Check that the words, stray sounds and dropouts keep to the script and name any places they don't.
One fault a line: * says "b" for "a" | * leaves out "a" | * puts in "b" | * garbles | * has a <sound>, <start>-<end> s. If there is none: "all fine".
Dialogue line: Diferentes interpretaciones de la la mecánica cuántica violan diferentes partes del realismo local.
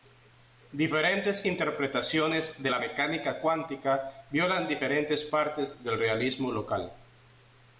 * leaves out "la"